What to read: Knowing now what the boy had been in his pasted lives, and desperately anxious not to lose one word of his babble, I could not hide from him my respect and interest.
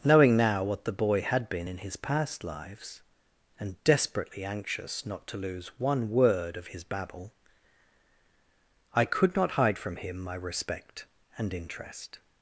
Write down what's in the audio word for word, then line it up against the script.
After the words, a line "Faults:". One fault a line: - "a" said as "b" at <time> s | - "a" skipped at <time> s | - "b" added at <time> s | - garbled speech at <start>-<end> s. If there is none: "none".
Knowing now what the boy had been in his past lives, and desperately anxious not to lose one word of his babble, I could not hide from him my respect and interest.
Faults:
- "pasted" said as "past" at 2.0 s